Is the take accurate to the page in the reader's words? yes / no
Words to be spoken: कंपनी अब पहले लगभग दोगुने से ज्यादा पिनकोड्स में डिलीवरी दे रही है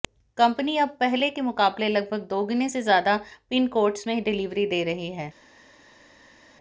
no